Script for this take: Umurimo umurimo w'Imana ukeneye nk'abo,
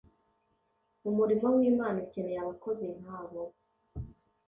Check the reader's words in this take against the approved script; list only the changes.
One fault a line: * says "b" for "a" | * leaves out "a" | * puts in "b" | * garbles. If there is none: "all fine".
* leaves out "umurimo"
* puts in "abakozi"